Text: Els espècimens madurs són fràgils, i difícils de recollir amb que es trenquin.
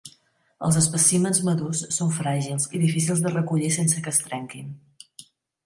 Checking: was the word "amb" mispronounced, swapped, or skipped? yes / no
yes